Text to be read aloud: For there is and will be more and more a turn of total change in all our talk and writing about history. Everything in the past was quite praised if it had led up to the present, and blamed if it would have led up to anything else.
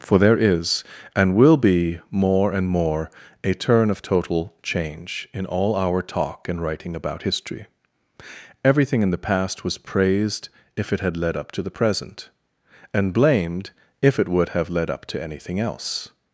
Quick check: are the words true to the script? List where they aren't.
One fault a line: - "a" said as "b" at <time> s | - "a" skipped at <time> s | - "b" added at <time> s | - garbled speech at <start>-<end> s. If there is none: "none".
- "quite" skipped at 9.8 s